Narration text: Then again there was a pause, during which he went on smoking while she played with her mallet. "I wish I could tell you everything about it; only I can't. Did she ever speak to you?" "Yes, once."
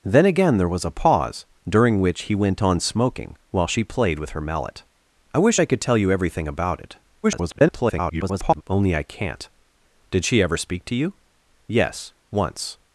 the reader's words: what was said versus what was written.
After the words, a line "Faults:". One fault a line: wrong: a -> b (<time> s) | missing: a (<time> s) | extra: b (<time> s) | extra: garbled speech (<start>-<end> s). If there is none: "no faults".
Then again there was a pause, during which he went on smoking while she played with her mallet. "I wish I could tell you everything about it; [garbled] only I can't. Did she ever speak to you?" "Yes, once."
Faults:
extra: garbled speech (7.2-8.6 s)